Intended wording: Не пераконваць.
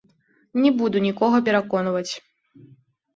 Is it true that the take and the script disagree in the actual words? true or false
true